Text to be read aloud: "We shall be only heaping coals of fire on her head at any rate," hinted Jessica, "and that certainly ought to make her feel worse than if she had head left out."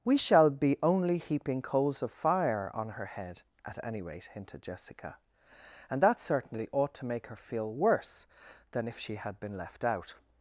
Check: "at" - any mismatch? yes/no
no